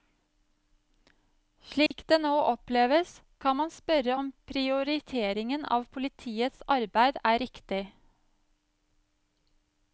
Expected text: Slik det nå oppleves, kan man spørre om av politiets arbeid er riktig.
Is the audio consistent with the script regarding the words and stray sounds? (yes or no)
no